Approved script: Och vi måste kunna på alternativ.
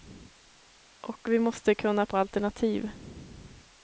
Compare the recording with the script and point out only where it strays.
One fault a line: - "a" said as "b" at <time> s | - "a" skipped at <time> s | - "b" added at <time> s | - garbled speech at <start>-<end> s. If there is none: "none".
none